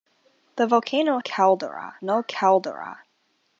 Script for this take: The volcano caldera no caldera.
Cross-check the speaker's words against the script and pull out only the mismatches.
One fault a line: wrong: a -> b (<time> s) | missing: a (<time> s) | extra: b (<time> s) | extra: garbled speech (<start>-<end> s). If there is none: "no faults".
no faults